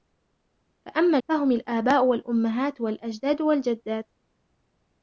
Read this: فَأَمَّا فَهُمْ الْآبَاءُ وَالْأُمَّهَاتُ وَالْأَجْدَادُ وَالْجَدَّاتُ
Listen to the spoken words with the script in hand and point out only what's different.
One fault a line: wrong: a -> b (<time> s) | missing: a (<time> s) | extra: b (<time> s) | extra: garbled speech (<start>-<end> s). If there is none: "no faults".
no faults